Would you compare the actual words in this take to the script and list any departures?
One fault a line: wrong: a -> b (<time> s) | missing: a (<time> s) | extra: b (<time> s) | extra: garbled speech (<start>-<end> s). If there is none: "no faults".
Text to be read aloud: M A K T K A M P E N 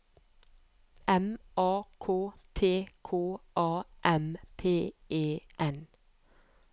no faults